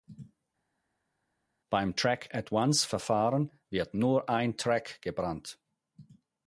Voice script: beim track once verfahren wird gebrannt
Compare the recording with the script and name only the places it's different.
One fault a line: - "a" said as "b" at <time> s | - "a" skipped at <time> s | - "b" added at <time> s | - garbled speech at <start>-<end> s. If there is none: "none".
- "at" added at 2.3 s
- "nur ein track" added at 3.9 s